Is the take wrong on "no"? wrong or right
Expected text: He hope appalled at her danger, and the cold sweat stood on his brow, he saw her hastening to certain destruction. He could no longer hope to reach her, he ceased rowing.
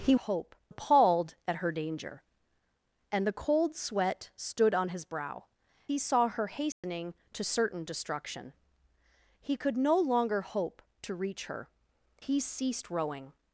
right